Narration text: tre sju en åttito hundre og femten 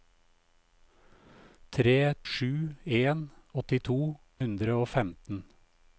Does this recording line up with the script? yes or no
yes